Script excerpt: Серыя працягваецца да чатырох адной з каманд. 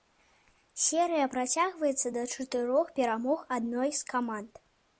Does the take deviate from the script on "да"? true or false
false